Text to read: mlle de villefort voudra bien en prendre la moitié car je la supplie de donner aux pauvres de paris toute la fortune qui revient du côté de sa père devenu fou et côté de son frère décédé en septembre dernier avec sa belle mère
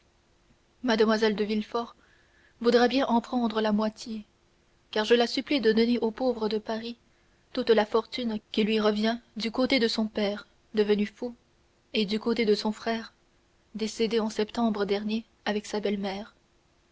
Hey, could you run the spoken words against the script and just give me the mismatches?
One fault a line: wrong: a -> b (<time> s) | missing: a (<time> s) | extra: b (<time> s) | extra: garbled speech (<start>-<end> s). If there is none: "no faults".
extra: lui (8.6 s)
wrong: sa -> son (9.9 s)
extra: du (12.1 s)